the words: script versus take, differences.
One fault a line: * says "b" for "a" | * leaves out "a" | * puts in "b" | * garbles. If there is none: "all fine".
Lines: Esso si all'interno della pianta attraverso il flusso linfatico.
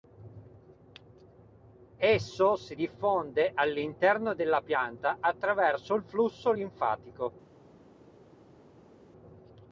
* puts in "diffonde"